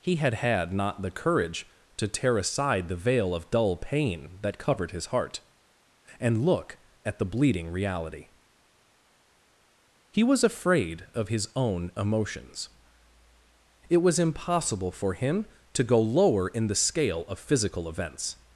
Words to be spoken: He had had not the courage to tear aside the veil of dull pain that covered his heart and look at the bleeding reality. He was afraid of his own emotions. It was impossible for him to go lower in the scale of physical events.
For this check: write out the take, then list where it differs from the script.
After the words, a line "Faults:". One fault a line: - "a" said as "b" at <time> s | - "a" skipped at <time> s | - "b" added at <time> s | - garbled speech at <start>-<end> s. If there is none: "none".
He had had not the courage to tear aside the veil of dull pain that covered his heart and look at the bleeding reality. He was afraid of his own emotions. It was impossible for him to go lower in the scale of physical events.
Faults:
none